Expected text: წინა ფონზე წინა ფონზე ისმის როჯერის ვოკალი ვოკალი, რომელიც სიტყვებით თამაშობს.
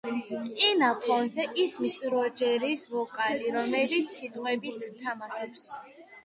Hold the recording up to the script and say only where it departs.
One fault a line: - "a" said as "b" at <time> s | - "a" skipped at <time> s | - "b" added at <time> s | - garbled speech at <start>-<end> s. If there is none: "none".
- "წინა ფონზე" skipped at 1.4 s
- "ვოკალი" skipped at 3.5 s